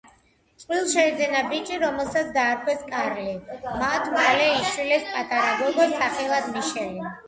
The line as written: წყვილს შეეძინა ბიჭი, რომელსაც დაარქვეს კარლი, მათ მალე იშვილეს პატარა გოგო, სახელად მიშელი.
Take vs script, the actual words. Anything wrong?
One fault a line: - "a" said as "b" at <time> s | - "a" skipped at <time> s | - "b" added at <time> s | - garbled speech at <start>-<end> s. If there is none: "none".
none